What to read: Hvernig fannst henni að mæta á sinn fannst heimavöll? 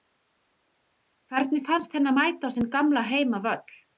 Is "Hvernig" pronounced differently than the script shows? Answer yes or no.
no